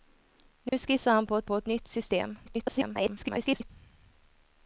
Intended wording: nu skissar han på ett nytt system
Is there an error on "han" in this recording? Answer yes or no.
no